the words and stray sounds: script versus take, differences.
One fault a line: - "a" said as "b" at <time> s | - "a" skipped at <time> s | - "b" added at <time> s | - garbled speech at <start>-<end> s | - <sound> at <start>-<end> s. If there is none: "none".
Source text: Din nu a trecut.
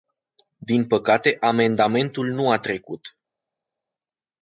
- "păcate amendamentul" added at 0.9 s